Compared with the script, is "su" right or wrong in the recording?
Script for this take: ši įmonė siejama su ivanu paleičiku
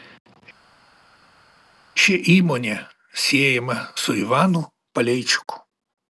right